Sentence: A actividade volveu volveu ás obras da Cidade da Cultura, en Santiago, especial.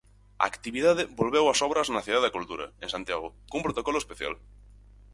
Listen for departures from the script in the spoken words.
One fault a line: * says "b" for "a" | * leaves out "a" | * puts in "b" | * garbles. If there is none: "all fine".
* leaves out "volveu"
* says "na" for "da"
* puts in "cun protocolo"